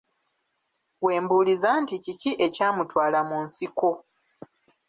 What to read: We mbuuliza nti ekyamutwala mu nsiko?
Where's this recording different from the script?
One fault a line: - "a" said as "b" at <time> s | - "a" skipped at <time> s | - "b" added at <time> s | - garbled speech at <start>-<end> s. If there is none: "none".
- "kiki" added at 2.0 s